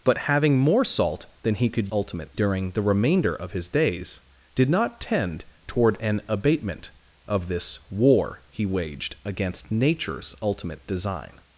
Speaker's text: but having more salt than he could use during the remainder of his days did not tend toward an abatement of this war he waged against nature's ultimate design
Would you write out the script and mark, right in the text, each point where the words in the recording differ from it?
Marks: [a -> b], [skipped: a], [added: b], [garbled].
but having more salt than he could [use -> ultimate] during the remainder of his days did not tend toward an abatement of this war he waged against nature's ultimate design